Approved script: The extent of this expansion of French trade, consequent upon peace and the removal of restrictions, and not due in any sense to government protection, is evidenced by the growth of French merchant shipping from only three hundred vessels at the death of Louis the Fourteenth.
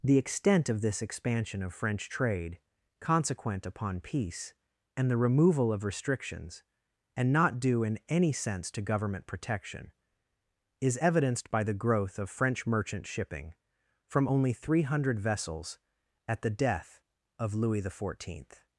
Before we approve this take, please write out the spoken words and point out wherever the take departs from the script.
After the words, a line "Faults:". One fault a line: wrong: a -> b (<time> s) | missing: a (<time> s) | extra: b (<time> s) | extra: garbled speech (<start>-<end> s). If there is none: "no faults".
The extent of this expansion of French trade, consequent upon peace and the removal of restrictions, and not due in any sense to government protection, is evidenced by the growth of French merchant shipping from only three hundred vessels at the death of Louis the Fourteenth.
Faults:
no faults